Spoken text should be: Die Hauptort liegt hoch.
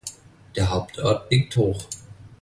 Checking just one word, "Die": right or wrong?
wrong